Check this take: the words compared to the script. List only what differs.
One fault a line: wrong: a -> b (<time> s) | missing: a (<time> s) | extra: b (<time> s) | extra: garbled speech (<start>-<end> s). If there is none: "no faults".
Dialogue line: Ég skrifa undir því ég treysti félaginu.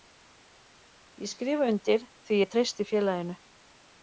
no faults